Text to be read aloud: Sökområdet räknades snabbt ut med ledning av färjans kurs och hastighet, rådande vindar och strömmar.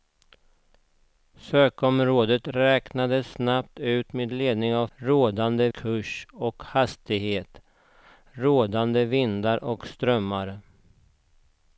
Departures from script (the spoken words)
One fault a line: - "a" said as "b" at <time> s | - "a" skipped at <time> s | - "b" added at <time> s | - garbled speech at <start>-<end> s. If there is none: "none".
- "färjans" said as "rådande" at 5.0 s